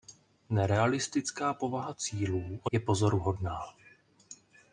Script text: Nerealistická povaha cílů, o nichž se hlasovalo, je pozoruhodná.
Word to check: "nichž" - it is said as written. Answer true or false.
false